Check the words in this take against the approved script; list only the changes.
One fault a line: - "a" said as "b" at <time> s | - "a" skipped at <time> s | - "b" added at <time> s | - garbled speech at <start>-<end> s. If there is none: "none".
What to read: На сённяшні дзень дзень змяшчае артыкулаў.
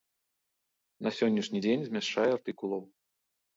- "дзень" skipped at 1.8 s